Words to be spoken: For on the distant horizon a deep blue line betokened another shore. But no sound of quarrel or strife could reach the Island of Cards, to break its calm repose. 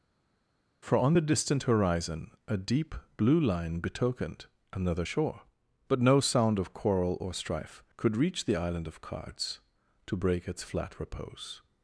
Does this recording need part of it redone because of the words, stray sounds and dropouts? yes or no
yes